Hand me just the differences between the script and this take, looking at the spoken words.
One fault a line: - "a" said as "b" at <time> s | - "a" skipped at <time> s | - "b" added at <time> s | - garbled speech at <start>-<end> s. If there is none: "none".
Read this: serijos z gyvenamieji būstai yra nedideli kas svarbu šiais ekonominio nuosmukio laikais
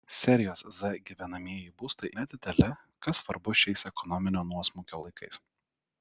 - "yra" skipped at 2.1 s